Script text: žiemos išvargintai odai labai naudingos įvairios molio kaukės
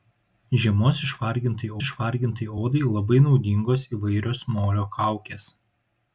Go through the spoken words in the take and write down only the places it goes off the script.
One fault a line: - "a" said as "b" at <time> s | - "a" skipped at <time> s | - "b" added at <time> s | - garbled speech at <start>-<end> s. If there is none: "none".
- "išvargintai" added at 1.9 s